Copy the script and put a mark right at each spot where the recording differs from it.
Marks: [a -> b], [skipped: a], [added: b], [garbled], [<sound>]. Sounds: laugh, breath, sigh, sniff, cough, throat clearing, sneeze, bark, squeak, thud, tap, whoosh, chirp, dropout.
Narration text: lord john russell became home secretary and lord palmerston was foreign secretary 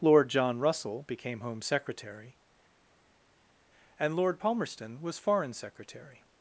lord john russell became home secretary and lord palmerston was foreign secretary